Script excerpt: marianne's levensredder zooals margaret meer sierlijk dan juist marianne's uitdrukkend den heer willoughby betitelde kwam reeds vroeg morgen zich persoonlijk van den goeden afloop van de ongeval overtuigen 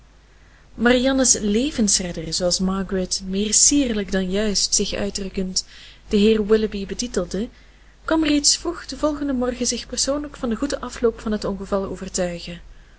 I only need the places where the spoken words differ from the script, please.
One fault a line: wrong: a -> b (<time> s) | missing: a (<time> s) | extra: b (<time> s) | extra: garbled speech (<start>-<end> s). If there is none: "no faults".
wrong: marianne's -> zich (4.8 s)
extra: den volgenden (8.8 s)
wrong: de -> het (11.3 s)